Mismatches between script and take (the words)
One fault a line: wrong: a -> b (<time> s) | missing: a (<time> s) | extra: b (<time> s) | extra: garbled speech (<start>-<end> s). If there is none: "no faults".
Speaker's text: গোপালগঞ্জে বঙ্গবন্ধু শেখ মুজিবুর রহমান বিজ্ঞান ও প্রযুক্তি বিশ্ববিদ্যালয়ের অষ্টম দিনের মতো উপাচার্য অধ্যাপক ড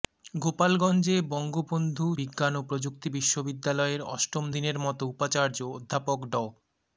missing: শেখ মুজিবুর রহমান (2.1 s)